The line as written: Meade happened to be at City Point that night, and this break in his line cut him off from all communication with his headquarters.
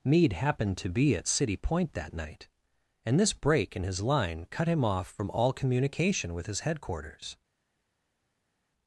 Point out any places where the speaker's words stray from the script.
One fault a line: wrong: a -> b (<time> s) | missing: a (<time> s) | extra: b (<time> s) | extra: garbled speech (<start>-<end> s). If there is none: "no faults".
no faults